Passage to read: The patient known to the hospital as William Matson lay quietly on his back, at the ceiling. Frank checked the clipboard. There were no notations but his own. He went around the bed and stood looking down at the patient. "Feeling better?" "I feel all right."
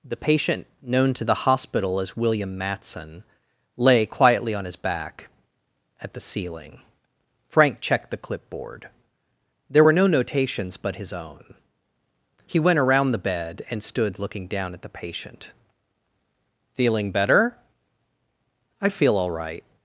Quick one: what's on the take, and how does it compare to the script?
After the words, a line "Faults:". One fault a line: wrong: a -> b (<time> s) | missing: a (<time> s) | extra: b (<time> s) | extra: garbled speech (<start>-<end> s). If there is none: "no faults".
The patient known to the hospital as William Matson lay quietly on his back, at the ceiling. Frank checked the clipboard. There were no notations but his own. He went around the bed and stood looking down at the patient. "Feeling better?" "I feel all right."
Faults:
no faults